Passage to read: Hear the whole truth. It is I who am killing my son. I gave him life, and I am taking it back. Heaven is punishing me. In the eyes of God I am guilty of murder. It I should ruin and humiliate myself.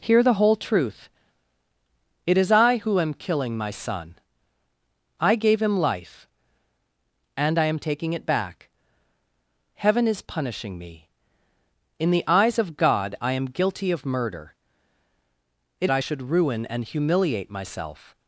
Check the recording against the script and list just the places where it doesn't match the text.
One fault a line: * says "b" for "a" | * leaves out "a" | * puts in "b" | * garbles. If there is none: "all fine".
all fine